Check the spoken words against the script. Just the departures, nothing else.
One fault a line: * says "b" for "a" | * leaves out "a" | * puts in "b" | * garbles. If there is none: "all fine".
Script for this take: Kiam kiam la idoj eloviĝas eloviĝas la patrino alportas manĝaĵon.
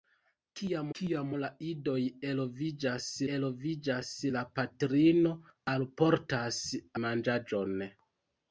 all fine